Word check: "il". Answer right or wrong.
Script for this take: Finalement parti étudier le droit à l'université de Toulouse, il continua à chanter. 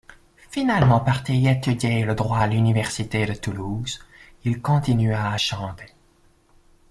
right